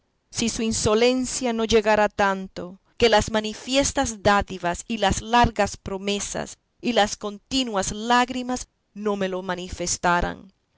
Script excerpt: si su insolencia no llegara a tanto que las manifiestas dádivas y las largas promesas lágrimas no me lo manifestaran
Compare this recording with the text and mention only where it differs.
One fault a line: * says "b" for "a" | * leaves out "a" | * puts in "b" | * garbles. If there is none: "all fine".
* puts in "y las continuas"